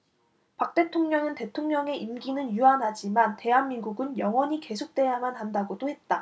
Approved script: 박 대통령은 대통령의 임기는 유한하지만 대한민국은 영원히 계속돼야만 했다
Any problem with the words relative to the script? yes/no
yes